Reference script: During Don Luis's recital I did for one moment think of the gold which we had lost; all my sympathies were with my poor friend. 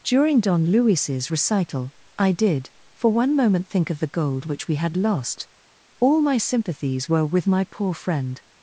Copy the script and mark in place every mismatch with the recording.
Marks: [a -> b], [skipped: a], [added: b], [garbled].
During Don Luis's recital I did for one moment think of the gold which we had lost; all my sympathies were with my poor friend.